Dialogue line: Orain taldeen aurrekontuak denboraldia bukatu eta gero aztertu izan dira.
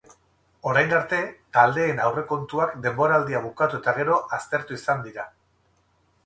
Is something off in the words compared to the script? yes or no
yes